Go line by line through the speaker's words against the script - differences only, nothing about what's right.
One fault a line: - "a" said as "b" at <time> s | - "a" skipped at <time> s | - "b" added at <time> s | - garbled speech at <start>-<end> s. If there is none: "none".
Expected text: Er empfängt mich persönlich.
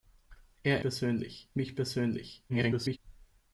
- "empfängt" said as "persönlich" at 0.8 s
- garbled speech at 2.5-3.0 s